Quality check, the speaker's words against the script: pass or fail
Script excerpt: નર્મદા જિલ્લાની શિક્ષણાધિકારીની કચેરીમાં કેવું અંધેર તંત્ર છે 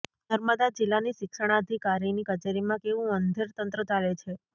fail